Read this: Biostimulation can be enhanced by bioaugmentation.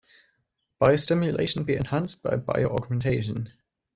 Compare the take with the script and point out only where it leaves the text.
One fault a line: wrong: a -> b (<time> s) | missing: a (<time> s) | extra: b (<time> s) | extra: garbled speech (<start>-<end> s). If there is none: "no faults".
missing: can (1.7 s)